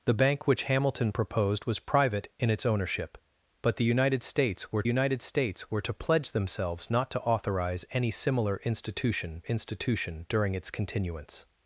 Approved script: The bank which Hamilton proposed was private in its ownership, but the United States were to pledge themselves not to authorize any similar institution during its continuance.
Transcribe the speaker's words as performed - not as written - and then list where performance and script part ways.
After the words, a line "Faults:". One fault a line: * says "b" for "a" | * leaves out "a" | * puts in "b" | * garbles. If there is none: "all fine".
The bank which Hamilton proposed was private in its ownership, but the United States were United States were to pledge themselves not to authorize any similar institution institution during its continuance.
Faults:
* puts in "United States were"
* puts in "institution"